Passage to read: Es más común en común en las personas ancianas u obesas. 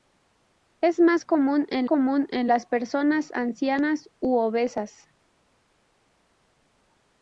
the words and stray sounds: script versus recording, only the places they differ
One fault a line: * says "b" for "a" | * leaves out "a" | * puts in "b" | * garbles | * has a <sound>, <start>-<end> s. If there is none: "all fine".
all fine